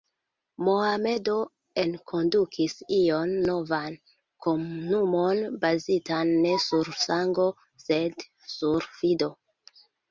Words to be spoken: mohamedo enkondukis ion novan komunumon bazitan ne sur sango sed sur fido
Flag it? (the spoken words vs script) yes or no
no